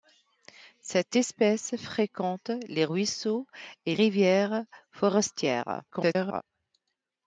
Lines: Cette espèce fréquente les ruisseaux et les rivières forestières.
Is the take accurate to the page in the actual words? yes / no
no